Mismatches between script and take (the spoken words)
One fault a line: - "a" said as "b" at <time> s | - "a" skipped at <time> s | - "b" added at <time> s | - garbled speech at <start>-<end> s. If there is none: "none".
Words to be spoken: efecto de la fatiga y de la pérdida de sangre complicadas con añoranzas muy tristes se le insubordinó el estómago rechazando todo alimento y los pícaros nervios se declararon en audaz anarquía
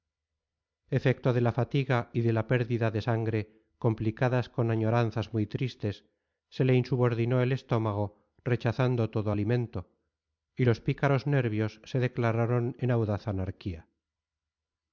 none